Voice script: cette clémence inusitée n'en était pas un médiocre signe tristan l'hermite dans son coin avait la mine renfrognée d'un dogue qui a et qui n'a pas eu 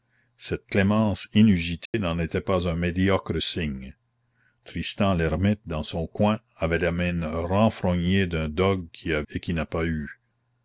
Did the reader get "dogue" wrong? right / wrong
right